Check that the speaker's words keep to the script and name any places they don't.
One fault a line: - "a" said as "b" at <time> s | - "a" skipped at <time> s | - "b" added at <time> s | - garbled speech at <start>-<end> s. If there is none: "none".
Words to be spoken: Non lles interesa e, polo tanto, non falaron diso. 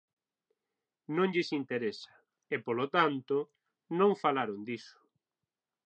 none